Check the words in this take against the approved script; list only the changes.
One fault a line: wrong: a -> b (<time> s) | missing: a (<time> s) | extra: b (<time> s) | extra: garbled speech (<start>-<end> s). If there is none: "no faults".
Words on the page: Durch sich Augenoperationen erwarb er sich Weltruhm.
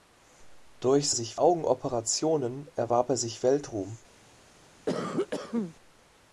no faults